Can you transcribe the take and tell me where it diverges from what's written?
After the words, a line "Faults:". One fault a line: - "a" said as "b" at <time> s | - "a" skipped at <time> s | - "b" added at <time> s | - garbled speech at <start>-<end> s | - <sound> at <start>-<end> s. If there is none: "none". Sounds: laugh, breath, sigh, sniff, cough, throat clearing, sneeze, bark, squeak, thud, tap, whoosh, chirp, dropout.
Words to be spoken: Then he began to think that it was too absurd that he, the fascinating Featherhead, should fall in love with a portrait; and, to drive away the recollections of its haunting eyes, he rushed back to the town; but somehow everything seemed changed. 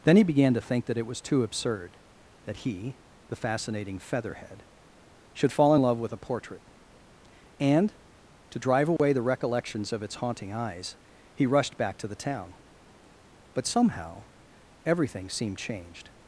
Then he began to think that it was too absurd that he, the fascinating Featherhead, should fall in love with a portrait; and, to drive away the recollections of its haunting eyes, he rushed back to the town; but somehow everything seemed changed.
Faults:
- dropout at 9.0-9.0 s